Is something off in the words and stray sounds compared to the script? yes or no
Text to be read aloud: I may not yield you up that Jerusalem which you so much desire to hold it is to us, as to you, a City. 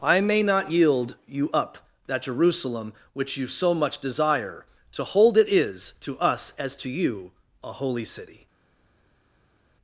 yes